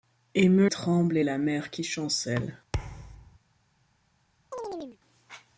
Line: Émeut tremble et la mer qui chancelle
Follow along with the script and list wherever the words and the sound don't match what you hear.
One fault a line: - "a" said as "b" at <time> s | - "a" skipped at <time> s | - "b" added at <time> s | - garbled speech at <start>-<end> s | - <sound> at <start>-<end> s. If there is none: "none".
- thud at 2.7-3.4 s
- chirp at 4.5-5.0 s